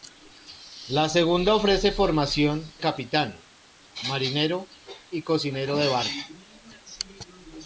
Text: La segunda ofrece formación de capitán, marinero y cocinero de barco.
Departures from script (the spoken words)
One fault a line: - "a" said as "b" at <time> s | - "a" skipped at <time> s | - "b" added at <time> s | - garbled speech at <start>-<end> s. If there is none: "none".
- "de" skipped at 2.7 s